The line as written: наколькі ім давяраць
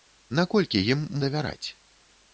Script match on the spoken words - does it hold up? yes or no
yes